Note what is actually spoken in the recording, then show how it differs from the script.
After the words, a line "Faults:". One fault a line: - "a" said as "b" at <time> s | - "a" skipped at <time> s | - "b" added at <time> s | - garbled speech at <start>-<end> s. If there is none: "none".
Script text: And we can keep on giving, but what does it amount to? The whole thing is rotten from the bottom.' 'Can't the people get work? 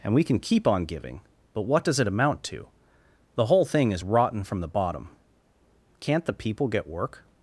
And we can keep on giving, but what does it amount to? The whole thing is rotten from the bottom.' 'Can't the people get work?
Faults:
none